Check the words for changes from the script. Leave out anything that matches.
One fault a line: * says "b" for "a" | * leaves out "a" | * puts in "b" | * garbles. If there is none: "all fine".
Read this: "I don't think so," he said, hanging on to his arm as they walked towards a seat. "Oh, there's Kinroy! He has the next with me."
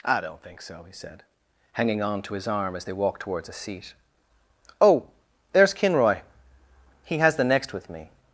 all fine